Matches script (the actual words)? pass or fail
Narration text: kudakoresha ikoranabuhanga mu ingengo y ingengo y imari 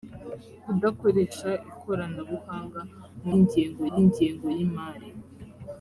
pass